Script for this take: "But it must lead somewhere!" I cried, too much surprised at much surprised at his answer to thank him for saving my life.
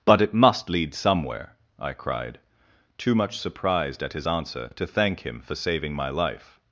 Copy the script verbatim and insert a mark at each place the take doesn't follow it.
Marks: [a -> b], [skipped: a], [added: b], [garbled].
"But it must lead somewhere!" I cried, too much surprised at [skipped: much surprised at] his answer to thank him for saving my life.